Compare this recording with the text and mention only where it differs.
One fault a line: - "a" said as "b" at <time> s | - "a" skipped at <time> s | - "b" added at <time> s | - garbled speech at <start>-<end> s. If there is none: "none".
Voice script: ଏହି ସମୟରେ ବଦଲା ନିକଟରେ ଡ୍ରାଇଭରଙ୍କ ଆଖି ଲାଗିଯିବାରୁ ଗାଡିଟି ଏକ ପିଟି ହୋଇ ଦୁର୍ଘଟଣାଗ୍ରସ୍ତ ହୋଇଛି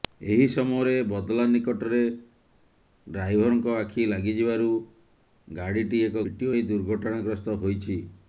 none